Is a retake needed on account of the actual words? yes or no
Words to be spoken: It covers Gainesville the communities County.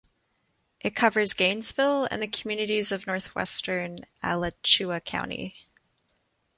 yes